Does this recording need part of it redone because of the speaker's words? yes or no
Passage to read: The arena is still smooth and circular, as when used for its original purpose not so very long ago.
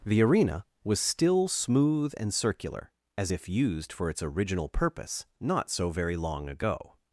yes